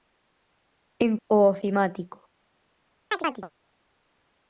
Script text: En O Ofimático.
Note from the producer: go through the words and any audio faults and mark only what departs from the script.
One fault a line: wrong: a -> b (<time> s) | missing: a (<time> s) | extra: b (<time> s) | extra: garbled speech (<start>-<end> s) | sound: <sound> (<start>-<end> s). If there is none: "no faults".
sound: chirp (3.1-3.5 s)